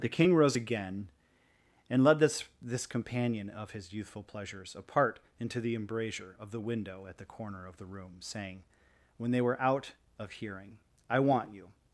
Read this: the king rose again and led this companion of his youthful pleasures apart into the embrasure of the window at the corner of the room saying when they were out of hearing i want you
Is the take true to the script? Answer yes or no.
no